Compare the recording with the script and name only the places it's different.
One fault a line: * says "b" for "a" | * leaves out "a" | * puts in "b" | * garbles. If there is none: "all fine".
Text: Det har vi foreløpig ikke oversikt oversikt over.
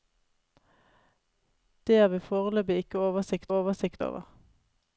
all fine